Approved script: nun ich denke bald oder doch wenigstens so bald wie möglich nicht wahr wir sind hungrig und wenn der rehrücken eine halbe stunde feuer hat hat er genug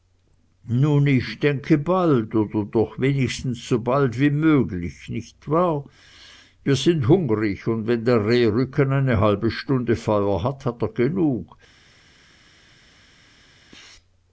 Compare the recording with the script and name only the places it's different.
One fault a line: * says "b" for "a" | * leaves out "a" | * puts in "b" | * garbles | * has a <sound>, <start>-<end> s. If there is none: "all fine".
all fine